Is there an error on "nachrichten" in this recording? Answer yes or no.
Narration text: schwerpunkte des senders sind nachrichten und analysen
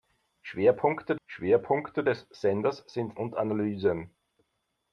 yes